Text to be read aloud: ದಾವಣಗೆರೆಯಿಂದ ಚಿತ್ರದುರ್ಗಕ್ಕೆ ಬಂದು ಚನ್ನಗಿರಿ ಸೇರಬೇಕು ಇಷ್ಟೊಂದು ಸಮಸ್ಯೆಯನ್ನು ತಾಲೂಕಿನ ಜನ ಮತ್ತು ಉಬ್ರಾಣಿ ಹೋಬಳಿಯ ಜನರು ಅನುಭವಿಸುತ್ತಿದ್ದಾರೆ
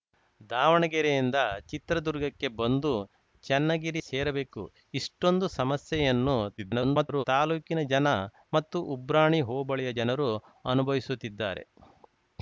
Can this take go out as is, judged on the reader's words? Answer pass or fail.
fail